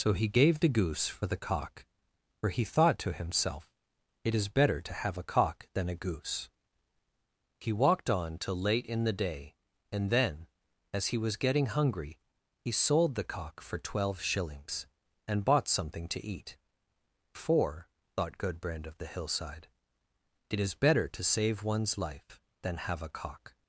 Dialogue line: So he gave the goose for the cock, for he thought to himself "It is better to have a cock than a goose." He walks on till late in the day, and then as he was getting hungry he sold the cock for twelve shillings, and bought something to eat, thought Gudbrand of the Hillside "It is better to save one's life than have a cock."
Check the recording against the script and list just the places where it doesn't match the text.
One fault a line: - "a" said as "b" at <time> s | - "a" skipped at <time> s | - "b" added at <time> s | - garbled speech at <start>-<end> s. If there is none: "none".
- "walks" said as "walked" at 7.7 s
- "for" added at 17.3 s